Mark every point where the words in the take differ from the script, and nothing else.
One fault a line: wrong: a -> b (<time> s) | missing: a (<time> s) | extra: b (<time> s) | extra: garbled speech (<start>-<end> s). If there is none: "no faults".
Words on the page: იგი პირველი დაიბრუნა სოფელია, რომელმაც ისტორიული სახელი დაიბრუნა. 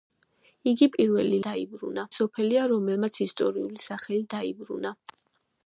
no faults